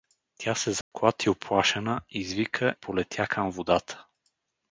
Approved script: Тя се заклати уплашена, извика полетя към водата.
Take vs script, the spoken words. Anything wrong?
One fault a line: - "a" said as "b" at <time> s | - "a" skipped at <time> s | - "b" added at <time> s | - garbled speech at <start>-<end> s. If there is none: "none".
none